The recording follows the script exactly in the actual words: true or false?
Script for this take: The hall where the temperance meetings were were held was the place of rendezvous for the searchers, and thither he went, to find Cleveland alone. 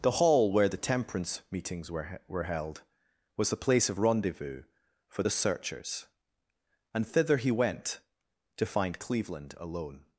true